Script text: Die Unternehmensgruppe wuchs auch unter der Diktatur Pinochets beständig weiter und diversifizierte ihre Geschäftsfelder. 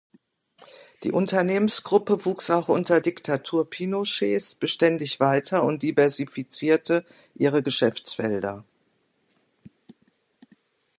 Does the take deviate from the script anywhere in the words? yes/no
yes